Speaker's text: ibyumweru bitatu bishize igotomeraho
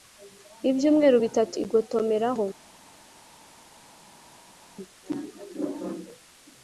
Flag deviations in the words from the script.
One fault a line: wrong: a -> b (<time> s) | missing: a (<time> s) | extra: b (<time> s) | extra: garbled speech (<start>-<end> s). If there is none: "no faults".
missing: bishize (1.5 s)